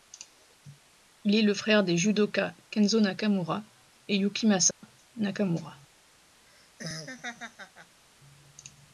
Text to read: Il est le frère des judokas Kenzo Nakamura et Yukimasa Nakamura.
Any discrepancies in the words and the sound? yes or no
yes